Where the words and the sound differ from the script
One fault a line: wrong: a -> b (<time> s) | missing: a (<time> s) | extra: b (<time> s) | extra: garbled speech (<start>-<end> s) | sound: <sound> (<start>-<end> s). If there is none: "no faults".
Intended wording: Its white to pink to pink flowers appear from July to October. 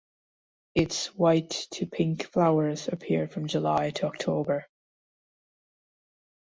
missing: to pink (2.2 s)